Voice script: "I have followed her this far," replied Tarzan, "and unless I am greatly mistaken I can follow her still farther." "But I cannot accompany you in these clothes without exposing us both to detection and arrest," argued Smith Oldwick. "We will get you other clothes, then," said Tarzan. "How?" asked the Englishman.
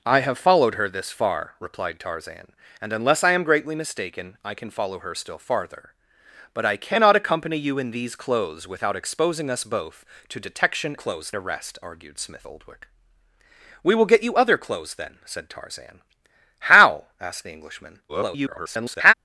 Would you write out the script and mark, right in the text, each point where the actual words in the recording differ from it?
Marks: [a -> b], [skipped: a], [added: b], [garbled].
"I have followed her this far," replied Tarzan, "and unless I am greatly mistaken I can follow her still farther." "But I cannot accompany you in these clothes without exposing us both to detection [and -> clothes] arrest," argued Smith Oldwick. "We will get you other clothes, then," said Tarzan. "How?" asked the Englishman. [garbled]